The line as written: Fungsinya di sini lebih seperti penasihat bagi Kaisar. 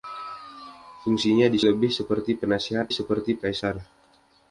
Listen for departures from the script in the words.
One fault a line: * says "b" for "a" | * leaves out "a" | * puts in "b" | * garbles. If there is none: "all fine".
* leaves out "sini"
* says "seperti" for "bagi"